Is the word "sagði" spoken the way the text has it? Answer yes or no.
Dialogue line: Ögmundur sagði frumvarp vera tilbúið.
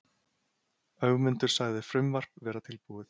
yes